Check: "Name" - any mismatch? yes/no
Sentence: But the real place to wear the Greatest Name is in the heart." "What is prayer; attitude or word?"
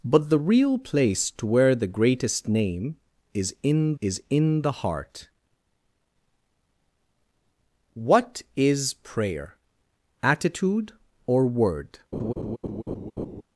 no